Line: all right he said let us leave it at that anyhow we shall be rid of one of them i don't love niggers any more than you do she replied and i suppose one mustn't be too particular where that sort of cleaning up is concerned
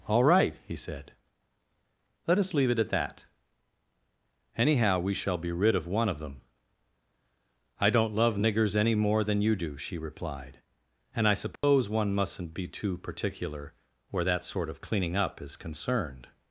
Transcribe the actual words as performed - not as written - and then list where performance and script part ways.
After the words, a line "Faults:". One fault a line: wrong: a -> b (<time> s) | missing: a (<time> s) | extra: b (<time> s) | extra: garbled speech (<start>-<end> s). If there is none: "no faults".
all right he said let us leave it at that anyhow we shall be rid of one of them i don't love niggers any more than you do she replied and i suppose one mustn't be too particular where that sort of cleaning up is concerned
Faults:
no faults